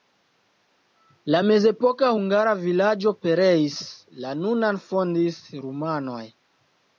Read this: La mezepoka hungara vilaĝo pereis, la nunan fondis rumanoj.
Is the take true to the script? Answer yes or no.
yes